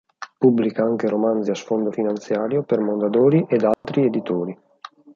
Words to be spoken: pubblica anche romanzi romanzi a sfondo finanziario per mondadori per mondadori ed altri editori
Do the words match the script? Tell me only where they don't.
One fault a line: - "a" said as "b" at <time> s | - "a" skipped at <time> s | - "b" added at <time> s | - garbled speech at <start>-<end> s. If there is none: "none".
- "romanzi" skipped at 1.5 s
- "per mondadori" skipped at 3.5 s